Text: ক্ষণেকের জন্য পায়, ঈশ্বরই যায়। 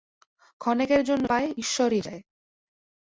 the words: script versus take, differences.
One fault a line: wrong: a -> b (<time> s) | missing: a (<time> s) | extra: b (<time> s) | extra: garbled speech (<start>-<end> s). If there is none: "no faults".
no faults